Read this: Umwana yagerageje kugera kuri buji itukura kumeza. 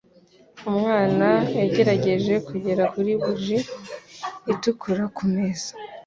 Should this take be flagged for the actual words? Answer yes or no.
no